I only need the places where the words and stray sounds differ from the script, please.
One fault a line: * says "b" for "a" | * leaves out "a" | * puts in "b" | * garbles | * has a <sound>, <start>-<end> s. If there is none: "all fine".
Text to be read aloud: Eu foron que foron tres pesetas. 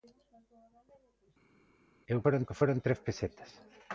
all fine